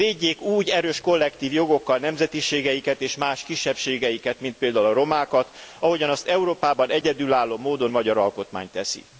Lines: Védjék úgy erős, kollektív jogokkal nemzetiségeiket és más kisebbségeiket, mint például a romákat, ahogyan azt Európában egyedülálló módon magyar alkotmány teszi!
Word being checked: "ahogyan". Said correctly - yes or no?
yes